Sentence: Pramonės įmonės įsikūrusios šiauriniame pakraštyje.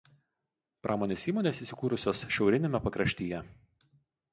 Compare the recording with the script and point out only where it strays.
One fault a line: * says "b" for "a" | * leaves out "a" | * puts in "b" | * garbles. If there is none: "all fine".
all fine